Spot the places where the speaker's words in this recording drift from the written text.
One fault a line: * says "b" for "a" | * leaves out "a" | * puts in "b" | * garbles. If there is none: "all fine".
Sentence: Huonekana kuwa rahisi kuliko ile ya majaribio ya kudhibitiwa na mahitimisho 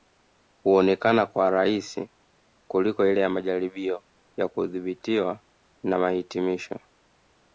all fine